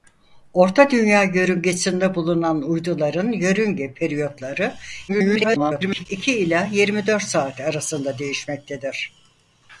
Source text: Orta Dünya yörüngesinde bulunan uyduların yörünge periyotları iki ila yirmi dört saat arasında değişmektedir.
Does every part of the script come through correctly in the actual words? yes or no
no